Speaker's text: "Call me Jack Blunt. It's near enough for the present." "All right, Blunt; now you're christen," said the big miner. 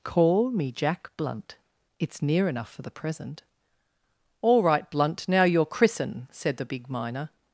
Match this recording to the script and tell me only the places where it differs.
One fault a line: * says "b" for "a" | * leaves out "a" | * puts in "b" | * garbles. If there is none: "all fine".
all fine